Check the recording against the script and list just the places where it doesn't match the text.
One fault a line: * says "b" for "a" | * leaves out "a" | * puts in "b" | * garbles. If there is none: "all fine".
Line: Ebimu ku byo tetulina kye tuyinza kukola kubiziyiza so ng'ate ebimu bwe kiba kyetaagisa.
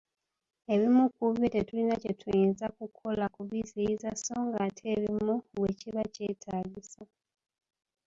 all fine